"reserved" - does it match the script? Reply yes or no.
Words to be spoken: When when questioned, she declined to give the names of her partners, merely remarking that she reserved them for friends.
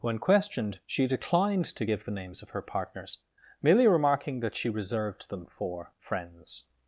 yes